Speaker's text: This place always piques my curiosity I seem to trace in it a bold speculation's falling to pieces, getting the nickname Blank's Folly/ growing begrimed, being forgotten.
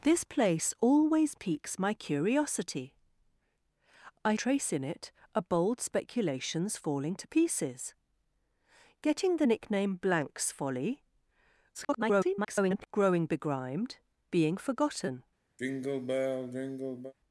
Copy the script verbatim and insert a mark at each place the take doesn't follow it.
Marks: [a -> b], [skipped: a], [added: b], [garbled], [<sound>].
This place always piques my curiosity I [skipped: seem to] trace in it a bold speculation's falling to pieces, getting the nickname Blank's Folly/ [garbled] growing begrimed, being forgotten. [sigh]